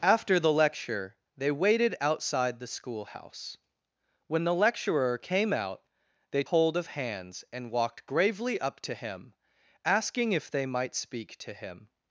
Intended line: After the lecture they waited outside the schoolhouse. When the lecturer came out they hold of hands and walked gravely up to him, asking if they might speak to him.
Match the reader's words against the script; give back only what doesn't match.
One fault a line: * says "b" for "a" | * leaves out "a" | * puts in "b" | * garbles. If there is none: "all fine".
all fine